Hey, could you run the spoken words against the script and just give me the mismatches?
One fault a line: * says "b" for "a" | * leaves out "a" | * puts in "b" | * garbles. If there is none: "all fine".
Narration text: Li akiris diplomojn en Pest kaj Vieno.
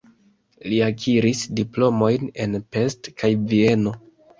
all fine